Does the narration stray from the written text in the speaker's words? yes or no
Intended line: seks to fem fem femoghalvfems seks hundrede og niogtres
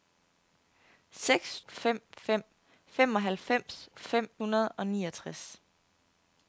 yes